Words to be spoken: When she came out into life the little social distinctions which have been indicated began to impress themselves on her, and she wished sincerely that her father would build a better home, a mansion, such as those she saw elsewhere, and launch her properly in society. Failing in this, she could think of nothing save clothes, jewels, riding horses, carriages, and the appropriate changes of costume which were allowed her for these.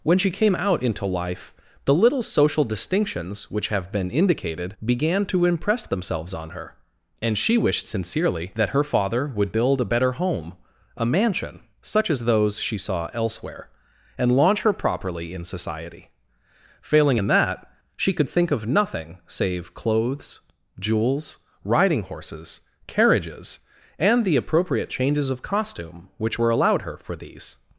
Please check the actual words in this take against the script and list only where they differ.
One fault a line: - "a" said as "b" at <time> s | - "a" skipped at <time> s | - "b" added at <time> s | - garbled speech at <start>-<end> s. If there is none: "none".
- "this" said as "that" at 17.3 s